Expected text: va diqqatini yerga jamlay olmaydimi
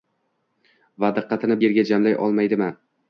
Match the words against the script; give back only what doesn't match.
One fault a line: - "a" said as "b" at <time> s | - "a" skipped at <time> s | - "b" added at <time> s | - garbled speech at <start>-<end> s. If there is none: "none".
none